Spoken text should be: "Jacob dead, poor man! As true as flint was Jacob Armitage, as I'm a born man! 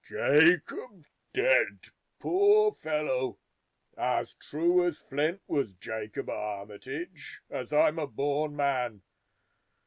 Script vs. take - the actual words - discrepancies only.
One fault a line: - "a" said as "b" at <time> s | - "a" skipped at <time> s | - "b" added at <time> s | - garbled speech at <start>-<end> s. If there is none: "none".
- "man" said as "fellow" at 2.7 s